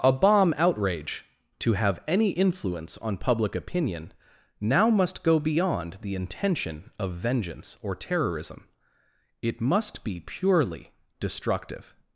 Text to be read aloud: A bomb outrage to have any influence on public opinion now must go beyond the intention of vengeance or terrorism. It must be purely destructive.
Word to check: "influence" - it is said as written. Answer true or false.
true